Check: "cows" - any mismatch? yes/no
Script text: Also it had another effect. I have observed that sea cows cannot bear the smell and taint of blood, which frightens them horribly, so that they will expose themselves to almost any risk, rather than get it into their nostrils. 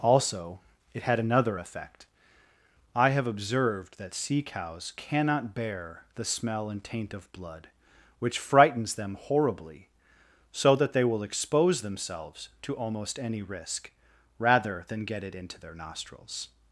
no